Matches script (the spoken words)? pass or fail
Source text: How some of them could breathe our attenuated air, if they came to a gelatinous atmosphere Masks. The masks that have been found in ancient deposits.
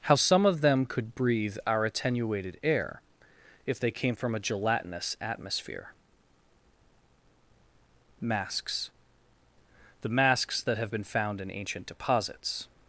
fail